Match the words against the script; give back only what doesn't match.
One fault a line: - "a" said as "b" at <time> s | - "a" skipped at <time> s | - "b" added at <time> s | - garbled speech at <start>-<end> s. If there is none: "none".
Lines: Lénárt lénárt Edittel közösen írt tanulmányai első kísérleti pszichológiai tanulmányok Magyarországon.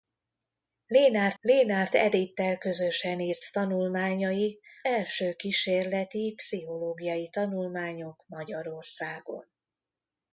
none